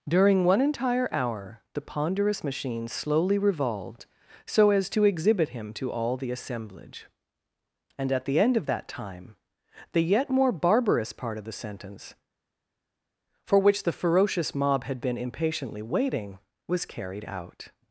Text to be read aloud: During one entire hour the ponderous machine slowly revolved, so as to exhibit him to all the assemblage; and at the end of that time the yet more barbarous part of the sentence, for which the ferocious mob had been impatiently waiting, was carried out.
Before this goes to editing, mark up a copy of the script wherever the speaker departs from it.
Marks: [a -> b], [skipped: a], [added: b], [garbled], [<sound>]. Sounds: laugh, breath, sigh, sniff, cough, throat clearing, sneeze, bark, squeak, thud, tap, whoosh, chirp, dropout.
During one entire hour the ponderous machine slowly revolved, so as to exhibit him to all the assemblage; and at the end of that time the yet more barbarous part of the sentence, for which the ferocious mob had been impatiently waiting, was carried out.